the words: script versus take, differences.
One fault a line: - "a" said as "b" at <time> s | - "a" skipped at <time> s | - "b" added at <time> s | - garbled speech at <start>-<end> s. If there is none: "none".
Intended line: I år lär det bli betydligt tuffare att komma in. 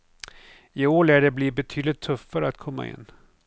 none